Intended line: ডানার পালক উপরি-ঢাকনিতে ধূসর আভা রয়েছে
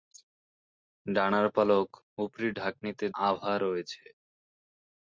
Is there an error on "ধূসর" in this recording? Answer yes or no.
yes